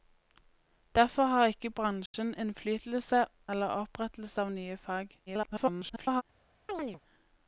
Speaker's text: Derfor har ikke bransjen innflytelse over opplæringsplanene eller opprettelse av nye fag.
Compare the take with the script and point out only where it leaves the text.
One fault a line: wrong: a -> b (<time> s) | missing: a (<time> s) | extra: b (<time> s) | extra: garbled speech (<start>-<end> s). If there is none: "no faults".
missing: over opplæringsplanene (3.2 s)
extra: garbled speech (5.3-6.2 s)